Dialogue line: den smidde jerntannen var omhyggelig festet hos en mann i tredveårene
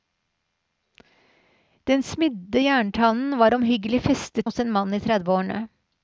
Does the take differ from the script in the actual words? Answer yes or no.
no